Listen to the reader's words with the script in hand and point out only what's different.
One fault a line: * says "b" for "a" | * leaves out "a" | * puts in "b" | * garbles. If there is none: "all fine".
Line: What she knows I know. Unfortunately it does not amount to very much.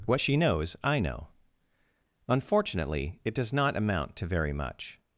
all fine